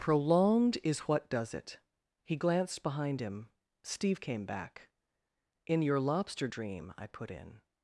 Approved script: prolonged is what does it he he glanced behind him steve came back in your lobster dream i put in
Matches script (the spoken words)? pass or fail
fail